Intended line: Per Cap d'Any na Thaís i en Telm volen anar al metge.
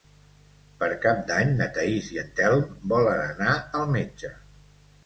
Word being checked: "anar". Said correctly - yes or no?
yes